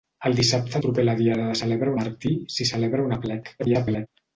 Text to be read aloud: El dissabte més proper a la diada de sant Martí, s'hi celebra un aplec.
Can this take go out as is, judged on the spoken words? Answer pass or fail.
fail